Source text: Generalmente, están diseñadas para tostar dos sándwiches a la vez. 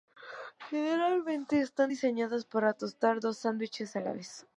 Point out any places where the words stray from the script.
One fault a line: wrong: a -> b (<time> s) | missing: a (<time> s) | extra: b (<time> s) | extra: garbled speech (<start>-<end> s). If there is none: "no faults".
no faults